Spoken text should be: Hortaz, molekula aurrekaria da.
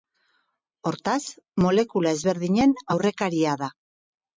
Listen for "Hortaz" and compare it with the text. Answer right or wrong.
right